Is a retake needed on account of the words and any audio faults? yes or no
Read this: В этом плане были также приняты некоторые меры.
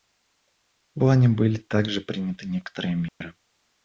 yes